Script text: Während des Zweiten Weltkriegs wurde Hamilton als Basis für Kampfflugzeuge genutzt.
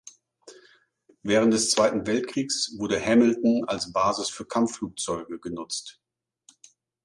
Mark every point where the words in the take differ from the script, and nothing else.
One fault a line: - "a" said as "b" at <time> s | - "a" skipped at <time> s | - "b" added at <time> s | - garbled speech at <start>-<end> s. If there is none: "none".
none